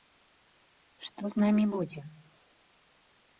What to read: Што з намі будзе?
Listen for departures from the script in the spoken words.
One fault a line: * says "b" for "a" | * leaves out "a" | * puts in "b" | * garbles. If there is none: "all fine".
all fine